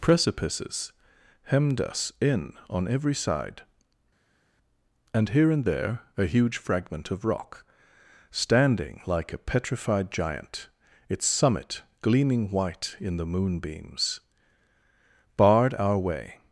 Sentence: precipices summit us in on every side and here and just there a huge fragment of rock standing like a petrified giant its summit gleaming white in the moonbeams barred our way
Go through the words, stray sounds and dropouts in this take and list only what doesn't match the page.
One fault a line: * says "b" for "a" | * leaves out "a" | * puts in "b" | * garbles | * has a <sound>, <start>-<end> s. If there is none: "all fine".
* says "hemmed" for "summit"
* leaves out "just"